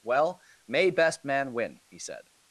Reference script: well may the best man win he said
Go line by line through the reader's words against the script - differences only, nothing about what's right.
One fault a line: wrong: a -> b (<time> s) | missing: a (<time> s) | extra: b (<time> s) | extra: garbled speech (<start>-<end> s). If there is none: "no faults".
missing: the (0.9 s)